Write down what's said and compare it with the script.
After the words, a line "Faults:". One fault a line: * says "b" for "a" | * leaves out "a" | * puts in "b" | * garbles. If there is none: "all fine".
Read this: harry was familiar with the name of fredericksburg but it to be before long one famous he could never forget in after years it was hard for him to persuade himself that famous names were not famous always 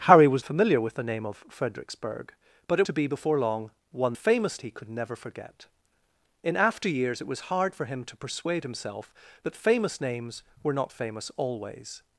harry was familiar with the name of fredericksburg but it to be before long one famous he could never forget in after years it was hard for him to persuade himself that famous names were not famous always
Faults:
all fine